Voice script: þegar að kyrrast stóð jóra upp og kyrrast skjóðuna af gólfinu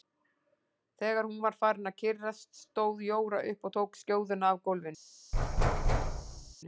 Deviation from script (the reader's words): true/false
true